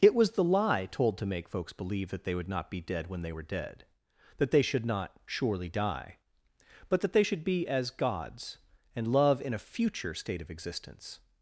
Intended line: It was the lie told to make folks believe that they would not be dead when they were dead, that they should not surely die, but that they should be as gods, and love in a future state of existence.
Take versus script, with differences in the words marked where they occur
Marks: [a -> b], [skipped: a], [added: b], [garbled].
It was the lie told to make folks believe that they would not be dead when they were dead, that they should not surely die, but that they should be as gods, and love in a future state of existence.